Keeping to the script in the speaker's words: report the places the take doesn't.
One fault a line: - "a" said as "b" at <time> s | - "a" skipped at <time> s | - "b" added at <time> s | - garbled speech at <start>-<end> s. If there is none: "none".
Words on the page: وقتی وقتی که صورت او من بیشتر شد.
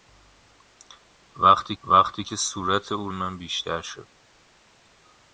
none